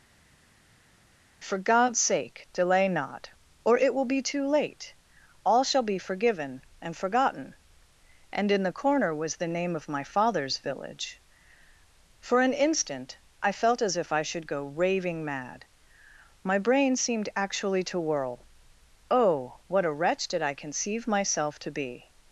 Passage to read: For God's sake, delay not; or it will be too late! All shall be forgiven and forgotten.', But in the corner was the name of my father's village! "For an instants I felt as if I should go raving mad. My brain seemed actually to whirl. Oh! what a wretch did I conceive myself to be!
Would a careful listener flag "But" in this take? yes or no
yes